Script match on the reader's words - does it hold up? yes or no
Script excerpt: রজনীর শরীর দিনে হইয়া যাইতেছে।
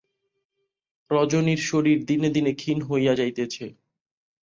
no